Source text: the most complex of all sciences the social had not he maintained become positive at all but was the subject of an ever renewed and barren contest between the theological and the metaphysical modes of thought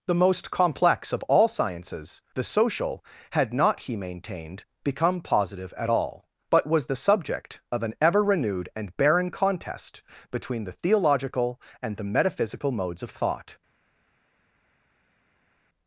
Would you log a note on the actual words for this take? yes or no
no